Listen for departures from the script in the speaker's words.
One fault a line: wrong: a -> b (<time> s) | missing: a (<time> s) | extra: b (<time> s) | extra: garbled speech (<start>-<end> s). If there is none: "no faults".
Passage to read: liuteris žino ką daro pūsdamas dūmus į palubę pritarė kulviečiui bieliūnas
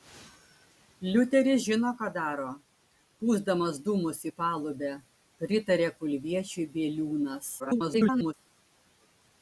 extra: garbled speech (7.6-8.3 s)